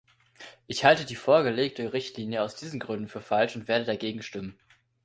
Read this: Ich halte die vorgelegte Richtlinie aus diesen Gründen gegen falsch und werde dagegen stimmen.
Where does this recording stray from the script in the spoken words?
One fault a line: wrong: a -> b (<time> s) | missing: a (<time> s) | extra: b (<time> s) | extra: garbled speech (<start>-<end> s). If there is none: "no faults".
wrong: gegen -> für (3.1 s)